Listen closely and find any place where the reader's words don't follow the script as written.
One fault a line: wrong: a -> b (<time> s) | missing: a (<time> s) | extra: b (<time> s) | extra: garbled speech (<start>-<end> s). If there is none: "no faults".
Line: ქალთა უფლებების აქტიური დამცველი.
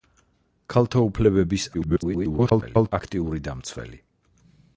extra: garbled speech (1.7-2.9 s)